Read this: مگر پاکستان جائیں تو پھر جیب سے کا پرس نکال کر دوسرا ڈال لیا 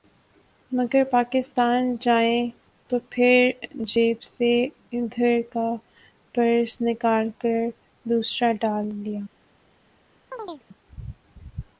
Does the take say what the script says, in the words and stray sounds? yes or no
no